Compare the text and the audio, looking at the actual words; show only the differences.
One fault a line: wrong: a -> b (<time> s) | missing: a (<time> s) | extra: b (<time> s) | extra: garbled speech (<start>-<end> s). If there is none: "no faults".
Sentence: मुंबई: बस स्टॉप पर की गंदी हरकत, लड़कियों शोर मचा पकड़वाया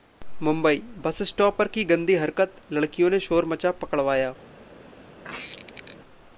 extra: ने (3.1 s)